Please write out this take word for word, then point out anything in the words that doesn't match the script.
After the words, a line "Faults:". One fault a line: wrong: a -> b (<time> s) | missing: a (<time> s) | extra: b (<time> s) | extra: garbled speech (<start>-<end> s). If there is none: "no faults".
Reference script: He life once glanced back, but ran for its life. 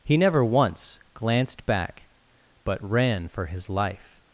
He never once glanced back, but ran for his life.
Faults:
wrong: life -> never (0.2 s)
wrong: its -> his (3.5 s)